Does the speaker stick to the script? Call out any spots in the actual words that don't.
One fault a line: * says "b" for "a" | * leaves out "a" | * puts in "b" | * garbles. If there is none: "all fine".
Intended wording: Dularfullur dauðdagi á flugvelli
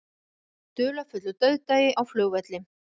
all fine